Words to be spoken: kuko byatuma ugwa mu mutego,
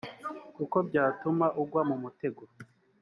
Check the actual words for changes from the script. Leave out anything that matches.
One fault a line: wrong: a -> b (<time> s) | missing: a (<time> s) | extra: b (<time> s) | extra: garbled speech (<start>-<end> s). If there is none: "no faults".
no faults